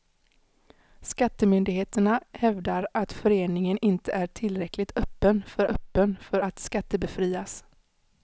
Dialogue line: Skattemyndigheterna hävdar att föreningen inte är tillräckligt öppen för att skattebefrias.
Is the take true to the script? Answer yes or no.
no